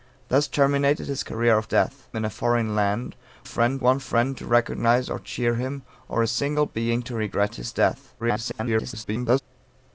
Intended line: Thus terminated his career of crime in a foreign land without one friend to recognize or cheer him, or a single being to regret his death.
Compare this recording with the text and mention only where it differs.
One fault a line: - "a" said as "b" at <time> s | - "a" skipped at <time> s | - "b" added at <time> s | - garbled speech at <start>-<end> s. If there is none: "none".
- "crime" said as "death" at 1.7 s
- "without" said as "friend" at 3.4 s
- garbled speech at 8.2-9.4 s